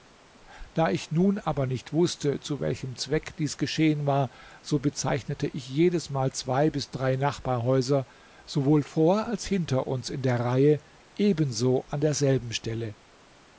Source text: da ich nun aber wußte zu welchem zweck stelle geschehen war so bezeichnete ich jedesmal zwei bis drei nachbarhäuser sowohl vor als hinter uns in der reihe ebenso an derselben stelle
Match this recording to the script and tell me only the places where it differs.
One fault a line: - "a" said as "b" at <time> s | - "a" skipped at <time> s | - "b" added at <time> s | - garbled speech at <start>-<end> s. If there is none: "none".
- "nicht" added at 1.7 s
- "stelle" said as "dies" at 3.4 s